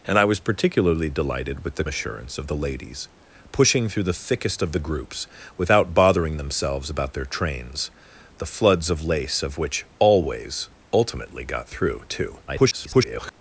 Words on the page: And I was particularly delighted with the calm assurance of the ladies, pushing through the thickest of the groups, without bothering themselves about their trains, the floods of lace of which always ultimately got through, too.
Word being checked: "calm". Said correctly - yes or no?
no